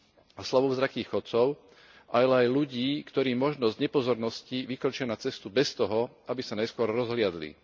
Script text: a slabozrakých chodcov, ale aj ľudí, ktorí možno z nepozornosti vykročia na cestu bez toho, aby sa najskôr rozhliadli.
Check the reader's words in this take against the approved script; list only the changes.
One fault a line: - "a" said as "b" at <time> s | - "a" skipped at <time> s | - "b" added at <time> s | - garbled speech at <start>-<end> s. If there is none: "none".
none